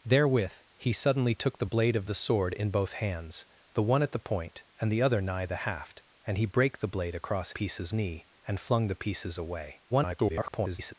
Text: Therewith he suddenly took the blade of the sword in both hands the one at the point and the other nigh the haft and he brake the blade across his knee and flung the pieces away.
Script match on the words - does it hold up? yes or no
no